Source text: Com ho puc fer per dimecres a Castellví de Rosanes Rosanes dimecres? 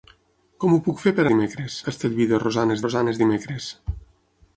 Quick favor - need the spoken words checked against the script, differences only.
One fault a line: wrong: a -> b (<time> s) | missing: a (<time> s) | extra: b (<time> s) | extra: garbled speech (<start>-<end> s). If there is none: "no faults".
no faults